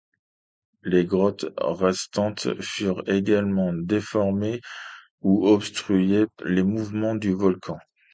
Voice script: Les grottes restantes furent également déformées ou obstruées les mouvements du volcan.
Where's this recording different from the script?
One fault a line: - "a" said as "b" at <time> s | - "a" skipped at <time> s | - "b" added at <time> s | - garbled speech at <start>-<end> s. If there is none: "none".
none